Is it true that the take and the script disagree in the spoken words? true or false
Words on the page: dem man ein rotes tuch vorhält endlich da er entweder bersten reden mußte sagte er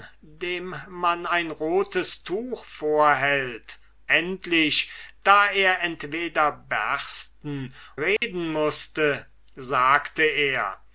false